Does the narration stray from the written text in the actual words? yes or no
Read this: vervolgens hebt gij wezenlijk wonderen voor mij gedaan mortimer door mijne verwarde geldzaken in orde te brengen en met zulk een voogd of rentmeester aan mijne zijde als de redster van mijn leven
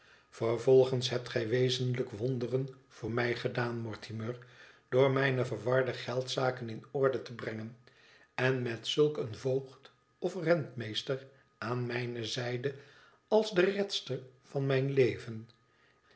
no